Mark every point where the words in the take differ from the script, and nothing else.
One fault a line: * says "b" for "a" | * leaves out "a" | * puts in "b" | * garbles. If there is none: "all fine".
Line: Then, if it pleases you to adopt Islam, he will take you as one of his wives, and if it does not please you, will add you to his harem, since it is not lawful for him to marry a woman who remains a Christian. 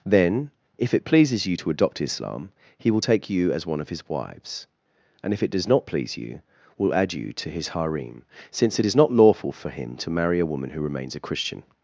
all fine